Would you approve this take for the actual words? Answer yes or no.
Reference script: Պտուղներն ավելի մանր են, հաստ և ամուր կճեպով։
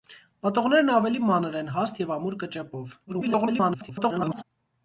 no